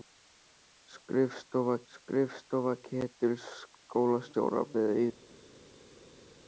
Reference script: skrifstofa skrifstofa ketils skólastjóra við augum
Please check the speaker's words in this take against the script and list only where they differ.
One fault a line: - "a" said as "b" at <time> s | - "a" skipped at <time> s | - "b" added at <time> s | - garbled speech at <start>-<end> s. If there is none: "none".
none